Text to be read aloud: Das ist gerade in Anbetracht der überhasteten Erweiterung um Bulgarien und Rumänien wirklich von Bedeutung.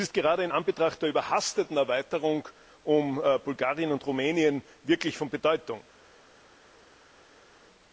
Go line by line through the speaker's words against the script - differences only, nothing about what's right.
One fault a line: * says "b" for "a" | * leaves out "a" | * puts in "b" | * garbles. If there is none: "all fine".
all fine